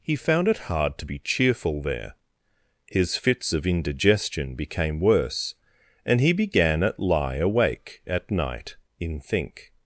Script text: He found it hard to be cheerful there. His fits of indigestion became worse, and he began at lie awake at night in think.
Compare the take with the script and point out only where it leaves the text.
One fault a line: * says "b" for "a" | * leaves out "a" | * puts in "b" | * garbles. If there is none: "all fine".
all fine